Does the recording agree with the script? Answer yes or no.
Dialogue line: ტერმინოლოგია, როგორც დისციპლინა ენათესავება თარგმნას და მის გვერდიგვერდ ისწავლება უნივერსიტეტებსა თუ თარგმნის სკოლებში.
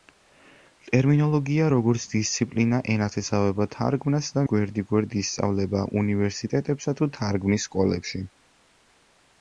no